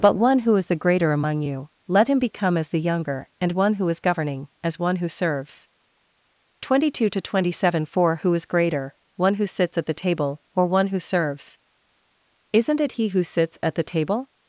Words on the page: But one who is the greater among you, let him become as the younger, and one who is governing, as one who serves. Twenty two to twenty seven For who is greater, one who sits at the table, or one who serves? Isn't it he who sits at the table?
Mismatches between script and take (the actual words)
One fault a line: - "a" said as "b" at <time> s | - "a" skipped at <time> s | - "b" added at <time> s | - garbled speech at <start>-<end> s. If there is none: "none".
none